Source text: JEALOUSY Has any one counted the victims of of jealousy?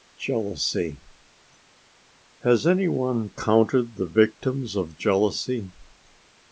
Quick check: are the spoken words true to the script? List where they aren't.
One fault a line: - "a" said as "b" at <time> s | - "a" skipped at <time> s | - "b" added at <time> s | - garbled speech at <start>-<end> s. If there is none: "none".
- "of" skipped at 5.0 s